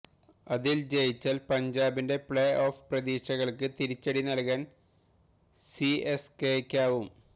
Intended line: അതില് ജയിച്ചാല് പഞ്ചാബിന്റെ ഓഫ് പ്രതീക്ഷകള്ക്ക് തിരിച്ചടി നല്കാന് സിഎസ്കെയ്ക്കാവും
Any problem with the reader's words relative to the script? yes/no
yes